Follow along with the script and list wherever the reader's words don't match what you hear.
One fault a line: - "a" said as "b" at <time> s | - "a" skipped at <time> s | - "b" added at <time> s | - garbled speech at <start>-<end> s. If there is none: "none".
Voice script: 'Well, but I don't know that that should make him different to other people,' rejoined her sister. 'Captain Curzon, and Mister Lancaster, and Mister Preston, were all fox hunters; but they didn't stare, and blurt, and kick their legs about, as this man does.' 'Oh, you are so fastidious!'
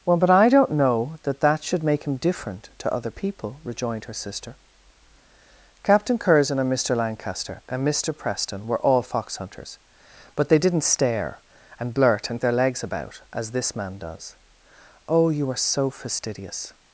- "kick" skipped at 12.4 s